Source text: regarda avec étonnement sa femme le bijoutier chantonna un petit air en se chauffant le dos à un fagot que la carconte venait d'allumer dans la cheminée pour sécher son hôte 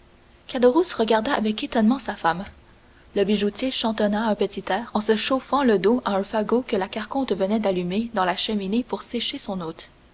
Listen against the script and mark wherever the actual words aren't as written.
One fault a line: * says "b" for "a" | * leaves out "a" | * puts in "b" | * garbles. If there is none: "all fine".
all fine